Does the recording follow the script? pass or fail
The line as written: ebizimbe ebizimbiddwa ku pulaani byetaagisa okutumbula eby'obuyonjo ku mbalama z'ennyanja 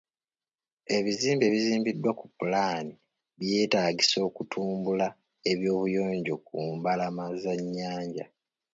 pass